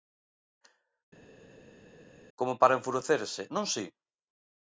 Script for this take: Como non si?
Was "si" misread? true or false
false